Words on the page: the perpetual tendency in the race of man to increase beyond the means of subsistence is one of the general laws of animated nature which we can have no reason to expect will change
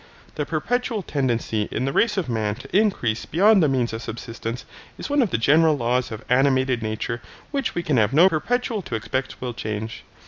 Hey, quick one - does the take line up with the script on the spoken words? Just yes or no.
no